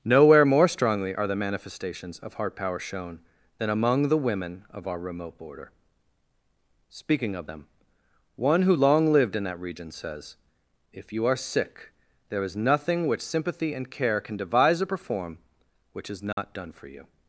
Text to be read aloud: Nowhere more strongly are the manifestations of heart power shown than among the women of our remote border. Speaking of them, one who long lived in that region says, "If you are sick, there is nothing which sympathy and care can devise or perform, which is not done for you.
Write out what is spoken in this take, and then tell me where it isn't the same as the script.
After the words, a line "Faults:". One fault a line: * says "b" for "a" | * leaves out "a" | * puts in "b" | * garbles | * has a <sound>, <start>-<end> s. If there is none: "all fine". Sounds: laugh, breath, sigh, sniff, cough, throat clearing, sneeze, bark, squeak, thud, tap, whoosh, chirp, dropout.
Nowhere more strongly are the manifestations of heart power shown than among the women of our remote border. Speaking of them, one who long lived in that region says, "If you are sick, there is nothing which sympathy and care can devise or perform, which is not done for you.
Faults:
* has a dropout, 16.3-16.4 s